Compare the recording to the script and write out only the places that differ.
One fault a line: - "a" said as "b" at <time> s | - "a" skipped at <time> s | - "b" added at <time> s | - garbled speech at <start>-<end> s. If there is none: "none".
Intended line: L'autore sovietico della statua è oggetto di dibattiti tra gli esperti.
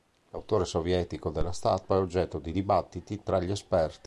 none